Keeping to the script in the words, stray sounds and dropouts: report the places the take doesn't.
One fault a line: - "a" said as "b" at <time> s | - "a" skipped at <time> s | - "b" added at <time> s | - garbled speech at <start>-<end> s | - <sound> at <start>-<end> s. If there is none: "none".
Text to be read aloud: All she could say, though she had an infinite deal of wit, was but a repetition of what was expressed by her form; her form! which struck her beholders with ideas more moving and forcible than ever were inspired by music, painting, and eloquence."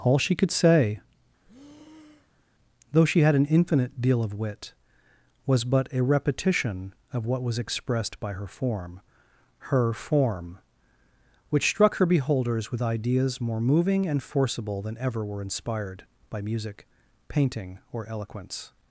- breath at 1.4-2.5 s
- "and" said as "or" at 17.9 s